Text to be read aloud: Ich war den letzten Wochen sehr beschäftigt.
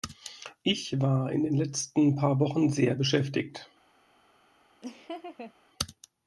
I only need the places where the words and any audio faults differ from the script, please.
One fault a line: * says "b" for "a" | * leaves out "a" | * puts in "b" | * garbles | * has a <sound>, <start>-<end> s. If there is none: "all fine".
* puts in "in"
* puts in "paar"
* has a laugh, 4.8-5.5 s